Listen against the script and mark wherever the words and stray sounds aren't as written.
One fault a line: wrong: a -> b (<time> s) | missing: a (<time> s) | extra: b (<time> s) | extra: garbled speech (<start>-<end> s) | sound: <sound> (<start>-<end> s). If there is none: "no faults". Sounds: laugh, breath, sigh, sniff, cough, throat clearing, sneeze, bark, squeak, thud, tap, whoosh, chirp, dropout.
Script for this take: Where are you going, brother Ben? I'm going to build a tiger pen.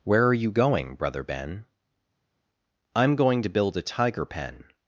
no faults